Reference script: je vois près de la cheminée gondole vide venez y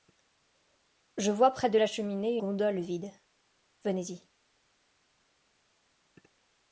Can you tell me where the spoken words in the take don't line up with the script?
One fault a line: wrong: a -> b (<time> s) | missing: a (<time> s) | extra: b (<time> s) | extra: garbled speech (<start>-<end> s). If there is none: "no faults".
no faults